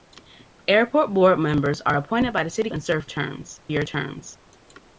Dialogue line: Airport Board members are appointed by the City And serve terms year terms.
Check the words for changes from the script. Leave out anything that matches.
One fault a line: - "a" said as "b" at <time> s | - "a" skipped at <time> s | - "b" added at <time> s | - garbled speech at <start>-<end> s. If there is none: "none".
none